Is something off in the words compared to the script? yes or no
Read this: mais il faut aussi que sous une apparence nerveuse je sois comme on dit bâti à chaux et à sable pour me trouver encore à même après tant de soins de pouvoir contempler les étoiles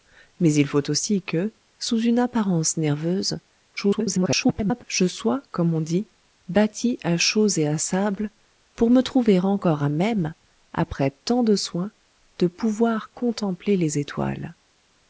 yes